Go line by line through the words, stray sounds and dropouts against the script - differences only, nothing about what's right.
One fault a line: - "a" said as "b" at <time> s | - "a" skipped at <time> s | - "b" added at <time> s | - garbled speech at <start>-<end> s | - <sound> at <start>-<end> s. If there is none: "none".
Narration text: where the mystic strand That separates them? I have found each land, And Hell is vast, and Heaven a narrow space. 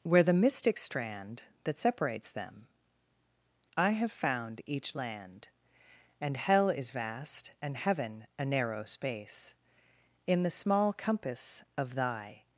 - "In the small compass of thy" added at 10.3 s